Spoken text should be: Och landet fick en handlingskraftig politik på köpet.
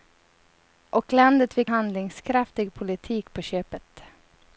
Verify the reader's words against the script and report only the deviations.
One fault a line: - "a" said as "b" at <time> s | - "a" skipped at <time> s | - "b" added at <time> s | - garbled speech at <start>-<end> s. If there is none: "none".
- "en" skipped at 1.7 s